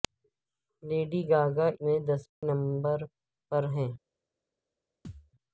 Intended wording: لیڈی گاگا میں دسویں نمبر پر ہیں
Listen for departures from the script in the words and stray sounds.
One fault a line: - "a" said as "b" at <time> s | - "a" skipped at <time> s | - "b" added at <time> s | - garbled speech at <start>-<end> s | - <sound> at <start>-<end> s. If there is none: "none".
- dropout at 2.3-2.4 s
- thud at 5.0-5.3 s